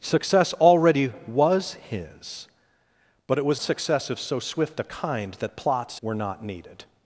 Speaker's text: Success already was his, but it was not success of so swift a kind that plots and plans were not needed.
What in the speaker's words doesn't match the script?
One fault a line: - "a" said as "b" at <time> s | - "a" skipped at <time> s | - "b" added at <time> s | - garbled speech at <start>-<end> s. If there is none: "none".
- "not" skipped at 3.6 s
- "and plans" skipped at 6.0 s